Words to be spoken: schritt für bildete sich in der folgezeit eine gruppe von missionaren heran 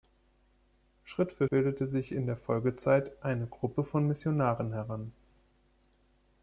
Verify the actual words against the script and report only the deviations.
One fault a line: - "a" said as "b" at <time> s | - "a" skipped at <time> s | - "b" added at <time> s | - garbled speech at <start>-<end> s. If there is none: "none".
none